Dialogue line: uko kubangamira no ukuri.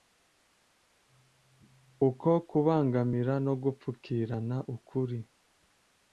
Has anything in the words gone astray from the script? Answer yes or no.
yes